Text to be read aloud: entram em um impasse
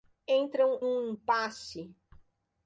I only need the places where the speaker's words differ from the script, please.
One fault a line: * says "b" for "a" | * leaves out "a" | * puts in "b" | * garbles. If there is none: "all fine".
* leaves out "em"